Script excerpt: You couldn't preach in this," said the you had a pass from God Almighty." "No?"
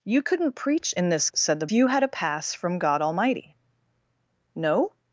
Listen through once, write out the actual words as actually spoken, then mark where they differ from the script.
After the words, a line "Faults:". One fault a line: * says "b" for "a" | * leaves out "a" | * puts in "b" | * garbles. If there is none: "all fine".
You couldn't preach in this," said the you had a pass from God Almighty." "No?"
Faults:
all fine